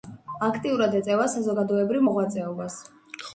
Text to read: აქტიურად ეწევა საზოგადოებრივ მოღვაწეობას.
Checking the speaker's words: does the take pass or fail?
pass